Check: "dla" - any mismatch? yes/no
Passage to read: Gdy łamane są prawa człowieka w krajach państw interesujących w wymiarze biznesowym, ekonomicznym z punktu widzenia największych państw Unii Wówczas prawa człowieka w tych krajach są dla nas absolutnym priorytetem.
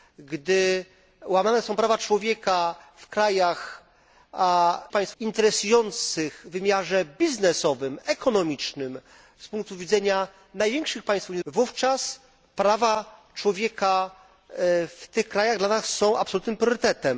no